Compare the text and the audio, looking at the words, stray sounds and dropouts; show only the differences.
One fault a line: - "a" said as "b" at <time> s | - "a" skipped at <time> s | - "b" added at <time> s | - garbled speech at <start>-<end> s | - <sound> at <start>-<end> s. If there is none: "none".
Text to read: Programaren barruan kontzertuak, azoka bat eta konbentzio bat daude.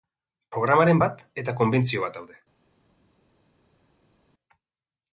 - "barruan kontzertuak azoka" skipped at 1.0 s